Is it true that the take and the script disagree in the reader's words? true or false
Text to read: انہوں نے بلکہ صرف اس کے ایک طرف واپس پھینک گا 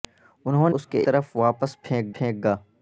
true